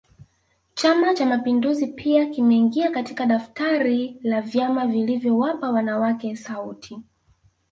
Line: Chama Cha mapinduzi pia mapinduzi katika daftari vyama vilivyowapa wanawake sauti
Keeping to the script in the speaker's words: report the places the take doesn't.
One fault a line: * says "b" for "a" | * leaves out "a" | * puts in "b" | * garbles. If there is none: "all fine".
* says "kimeingia" for "mapinduzi"
* puts in "la"